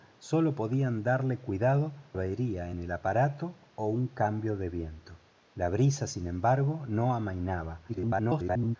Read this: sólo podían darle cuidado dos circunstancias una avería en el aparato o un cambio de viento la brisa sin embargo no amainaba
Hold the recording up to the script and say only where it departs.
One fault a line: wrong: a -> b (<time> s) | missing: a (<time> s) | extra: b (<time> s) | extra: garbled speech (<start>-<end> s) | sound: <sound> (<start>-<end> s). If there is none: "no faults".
missing: dos circunstancias una (1.9 s)
extra: garbled speech (7.9-8.8 s)